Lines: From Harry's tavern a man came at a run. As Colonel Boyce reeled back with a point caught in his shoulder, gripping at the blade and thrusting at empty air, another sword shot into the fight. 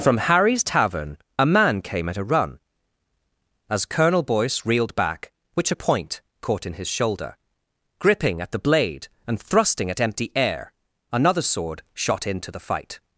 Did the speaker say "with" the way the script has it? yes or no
no